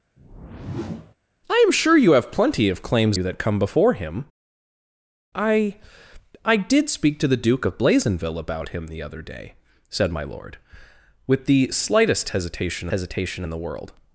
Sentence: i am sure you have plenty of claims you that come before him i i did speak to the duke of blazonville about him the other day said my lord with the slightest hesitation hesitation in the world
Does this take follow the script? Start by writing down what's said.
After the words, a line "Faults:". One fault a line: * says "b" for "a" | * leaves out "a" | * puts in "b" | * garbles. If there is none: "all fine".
i am sure you have plenty of claims you that come before him i i did speak to the duke of blazonville about him the other day said my lord with the slightest hesitation hesitation in the world
Faults:
all fine